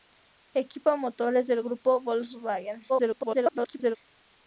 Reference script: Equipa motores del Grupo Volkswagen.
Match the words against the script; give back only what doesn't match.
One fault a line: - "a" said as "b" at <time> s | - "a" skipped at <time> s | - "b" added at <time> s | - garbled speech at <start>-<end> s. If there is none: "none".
- garbled speech at 2.9-4.0 s